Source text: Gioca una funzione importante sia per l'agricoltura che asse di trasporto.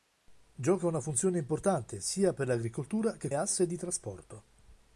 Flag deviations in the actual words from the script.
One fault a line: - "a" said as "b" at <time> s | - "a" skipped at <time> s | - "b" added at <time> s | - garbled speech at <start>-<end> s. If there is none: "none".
none